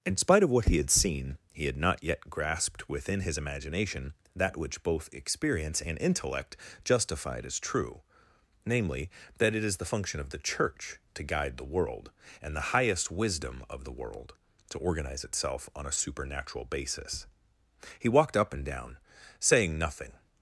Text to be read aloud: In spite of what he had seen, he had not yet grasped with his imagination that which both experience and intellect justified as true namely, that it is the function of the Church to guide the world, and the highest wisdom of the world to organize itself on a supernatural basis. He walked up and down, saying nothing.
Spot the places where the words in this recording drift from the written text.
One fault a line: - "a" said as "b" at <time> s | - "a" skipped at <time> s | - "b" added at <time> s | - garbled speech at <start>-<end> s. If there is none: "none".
- "with" said as "within" at 2.9 s